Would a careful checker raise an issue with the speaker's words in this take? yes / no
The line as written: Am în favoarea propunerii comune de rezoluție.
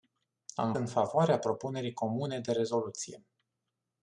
no